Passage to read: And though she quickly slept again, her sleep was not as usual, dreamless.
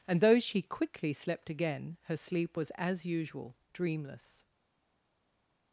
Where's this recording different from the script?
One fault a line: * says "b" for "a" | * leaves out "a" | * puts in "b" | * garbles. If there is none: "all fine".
* leaves out "not"